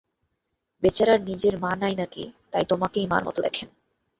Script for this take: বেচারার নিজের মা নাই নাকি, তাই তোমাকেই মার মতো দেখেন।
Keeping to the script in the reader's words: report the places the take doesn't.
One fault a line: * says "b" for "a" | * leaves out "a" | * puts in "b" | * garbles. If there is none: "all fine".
all fine